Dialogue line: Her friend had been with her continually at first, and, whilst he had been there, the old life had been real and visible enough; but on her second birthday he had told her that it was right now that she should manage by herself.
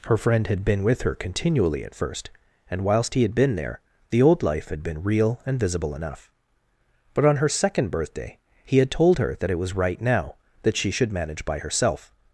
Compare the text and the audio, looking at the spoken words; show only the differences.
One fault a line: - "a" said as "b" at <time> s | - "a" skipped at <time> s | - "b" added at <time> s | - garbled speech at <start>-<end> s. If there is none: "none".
none